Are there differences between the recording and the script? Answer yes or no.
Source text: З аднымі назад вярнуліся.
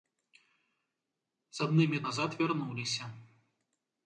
no